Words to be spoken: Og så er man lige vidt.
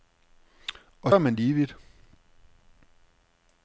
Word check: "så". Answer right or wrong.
wrong